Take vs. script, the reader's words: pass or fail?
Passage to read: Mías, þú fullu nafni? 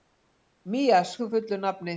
pass